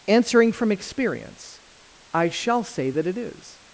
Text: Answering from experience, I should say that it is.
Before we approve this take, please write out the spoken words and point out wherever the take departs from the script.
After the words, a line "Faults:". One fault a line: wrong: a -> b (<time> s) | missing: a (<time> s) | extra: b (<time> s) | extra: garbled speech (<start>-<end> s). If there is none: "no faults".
Answering from experience, I shall say that it is.
Faults:
wrong: should -> shall (2.3 s)